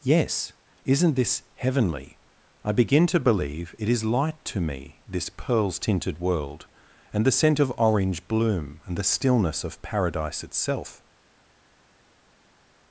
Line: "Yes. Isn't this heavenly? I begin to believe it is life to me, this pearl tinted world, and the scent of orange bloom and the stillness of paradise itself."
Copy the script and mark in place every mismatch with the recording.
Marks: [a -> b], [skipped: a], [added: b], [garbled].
"Yes. Isn't this heavenly? I begin to believe it is [life -> light] to me, this [pearl -> pearls] tinted world, and the scent of orange bloom and the stillness of paradise itself."